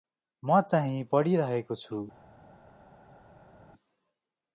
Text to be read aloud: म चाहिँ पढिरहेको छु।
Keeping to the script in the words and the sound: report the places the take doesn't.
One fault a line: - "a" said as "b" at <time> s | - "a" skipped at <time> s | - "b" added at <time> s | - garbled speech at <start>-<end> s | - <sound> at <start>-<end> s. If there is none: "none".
none